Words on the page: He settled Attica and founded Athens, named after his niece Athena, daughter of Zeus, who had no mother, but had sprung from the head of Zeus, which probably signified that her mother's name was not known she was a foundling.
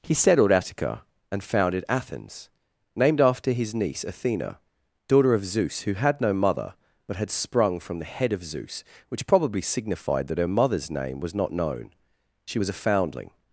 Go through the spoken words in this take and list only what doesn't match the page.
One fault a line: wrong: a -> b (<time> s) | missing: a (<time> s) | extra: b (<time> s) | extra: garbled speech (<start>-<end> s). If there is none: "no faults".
no faults